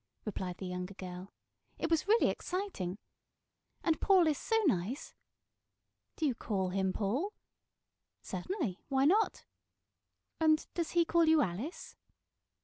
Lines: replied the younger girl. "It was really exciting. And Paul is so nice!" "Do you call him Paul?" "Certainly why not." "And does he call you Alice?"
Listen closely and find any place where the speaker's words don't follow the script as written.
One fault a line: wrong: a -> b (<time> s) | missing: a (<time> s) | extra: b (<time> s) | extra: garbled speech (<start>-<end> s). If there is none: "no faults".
no faults